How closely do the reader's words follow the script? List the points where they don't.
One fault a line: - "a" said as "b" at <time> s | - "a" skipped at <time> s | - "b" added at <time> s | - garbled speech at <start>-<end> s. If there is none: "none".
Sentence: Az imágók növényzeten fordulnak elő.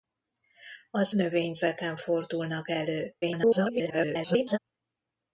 - "imágók" skipped at 1.1 s
- garbled speech at 3.2-4.6 s